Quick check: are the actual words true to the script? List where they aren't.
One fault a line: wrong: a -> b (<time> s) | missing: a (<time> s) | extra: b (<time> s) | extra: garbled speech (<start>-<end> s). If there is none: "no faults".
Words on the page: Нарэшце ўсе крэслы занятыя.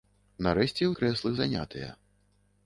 missing: ўсе (0.9 s)